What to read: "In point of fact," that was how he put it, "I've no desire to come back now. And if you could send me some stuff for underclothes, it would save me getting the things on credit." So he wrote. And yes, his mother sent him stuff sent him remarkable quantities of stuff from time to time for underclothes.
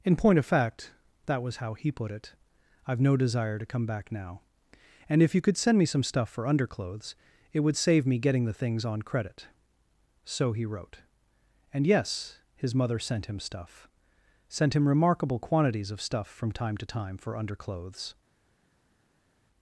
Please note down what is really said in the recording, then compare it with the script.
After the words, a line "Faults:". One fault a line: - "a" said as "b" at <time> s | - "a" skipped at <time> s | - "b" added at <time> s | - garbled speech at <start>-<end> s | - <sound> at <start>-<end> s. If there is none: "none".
"In point of fact," that was how he put it, "I've no desire to come back now. And if you could send me some stuff for underclothes, it would save me getting the things on credit." So he wrote. And yes, his mother sent him stuff sent him remarkable quantities of stuff from time to time for underclothes.
Faults:
none